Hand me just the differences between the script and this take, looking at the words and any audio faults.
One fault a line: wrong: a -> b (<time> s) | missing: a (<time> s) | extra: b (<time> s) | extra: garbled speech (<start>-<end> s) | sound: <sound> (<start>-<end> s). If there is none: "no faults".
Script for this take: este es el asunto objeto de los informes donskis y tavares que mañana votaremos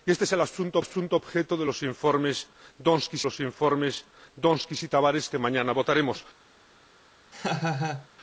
extra: asunto (0.8 s)
extra: los informes donskis (3.2 s)
sound: laugh (7.3-8.1 s)